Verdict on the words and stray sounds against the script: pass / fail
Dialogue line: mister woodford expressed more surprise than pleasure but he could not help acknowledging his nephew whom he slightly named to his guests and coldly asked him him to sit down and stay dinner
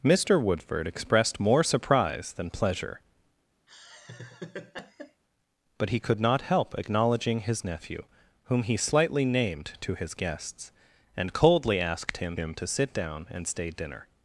fail